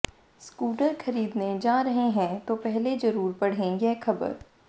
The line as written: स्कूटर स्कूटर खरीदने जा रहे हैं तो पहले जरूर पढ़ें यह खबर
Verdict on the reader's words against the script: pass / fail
fail